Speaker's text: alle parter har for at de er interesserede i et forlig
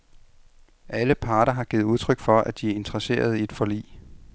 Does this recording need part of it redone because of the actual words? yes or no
yes